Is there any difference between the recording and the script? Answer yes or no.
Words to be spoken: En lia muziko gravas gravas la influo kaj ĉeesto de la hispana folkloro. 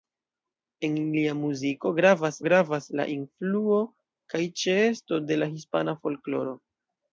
no